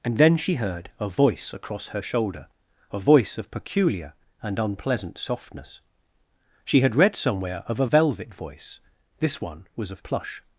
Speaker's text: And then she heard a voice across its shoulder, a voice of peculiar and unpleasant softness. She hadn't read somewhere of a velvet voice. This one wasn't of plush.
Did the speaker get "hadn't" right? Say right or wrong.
wrong